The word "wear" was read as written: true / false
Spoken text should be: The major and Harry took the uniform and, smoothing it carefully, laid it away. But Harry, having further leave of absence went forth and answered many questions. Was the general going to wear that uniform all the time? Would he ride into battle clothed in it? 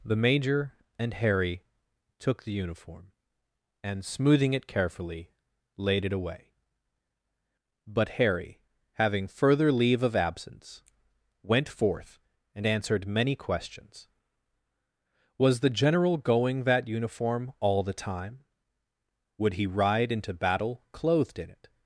false